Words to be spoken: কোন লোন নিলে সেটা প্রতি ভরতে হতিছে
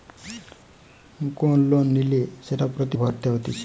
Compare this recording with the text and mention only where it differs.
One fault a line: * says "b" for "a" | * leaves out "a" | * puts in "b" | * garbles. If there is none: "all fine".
all fine